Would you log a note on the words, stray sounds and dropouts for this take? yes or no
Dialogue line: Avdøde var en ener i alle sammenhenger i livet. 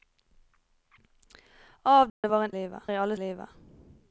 yes